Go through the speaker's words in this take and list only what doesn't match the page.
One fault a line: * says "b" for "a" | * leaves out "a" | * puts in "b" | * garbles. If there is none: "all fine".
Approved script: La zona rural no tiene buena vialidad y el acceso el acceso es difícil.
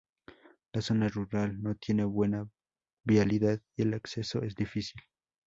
* leaves out "el acceso"